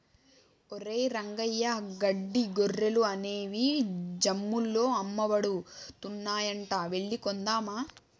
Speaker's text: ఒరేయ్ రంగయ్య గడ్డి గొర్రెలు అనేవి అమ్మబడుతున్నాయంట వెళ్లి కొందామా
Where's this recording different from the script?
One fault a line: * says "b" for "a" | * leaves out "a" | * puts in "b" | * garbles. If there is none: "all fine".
* puts in "జమ్ముల్లో"